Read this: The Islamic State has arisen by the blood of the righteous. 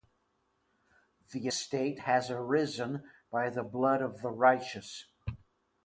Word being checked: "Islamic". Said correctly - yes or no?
no